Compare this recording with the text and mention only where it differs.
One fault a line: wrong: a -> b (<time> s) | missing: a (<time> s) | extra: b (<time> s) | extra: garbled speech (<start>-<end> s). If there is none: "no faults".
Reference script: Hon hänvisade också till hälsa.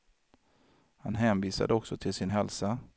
wrong: Hon -> Han (1.0 s)
extra: sin (2.1 s)